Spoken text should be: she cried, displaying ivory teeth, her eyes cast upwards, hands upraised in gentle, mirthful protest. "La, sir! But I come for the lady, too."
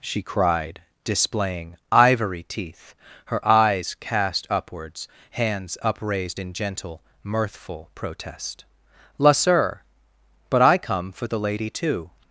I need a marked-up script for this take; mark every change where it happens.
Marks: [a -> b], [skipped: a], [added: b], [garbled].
she cried, displaying ivory teeth, her eyes cast upwards, hands upraised in gentle, mirthful protest. "La, sir! But I come for the lady, too."